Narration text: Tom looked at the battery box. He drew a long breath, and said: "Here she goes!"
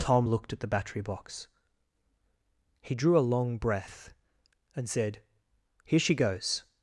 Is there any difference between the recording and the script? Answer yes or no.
no